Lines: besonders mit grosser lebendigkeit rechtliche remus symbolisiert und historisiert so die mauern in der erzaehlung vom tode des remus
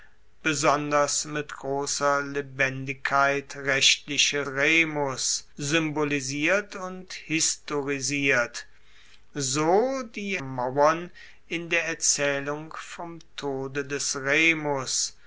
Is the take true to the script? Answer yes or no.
yes